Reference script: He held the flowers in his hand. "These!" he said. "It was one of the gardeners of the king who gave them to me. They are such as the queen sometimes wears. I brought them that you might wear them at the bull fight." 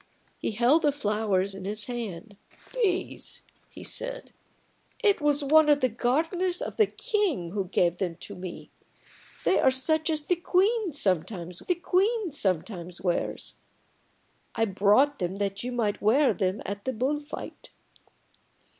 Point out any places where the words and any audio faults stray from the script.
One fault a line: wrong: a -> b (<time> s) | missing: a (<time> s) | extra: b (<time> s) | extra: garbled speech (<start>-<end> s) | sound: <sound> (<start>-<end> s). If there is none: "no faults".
extra: the queen sometimes (11.6 s)